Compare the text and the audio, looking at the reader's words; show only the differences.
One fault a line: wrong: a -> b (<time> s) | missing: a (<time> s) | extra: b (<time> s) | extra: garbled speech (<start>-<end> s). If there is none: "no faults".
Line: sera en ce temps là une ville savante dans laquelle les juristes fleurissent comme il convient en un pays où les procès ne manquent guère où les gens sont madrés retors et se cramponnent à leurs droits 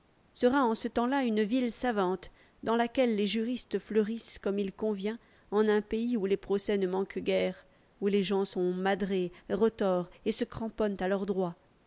no faults